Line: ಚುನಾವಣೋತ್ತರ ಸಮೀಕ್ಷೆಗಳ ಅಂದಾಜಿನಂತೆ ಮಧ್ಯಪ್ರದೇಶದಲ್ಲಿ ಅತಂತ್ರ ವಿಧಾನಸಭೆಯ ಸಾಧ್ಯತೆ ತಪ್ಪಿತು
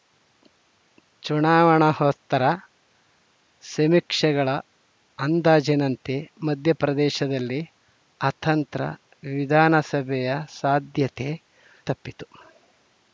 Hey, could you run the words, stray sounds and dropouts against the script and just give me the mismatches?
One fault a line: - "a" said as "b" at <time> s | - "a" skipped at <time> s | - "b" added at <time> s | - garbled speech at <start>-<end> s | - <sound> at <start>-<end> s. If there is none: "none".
none